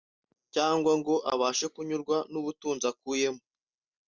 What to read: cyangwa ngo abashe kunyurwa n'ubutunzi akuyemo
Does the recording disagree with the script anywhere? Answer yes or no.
no